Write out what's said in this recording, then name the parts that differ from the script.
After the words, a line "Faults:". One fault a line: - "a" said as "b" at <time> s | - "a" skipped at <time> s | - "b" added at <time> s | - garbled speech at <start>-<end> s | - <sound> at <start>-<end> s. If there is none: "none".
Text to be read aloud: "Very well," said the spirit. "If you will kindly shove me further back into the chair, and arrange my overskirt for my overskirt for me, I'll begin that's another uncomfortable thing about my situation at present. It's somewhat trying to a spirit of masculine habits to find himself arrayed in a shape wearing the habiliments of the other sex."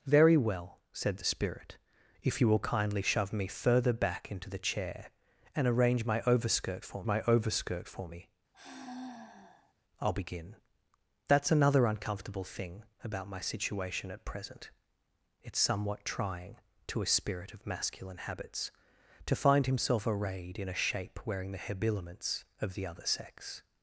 "Very well," said the spirit. "If you will kindly shove me further back into the chair, and arrange my overskirt for my overskirt for me, I'll begin that's another uncomfortable thing about my situation at present. It's somewhat trying to a spirit of masculine habits to find himself arrayed in a shape wearing the habiliments of the other sex."
Faults:
- sigh at 8.5-9.7 s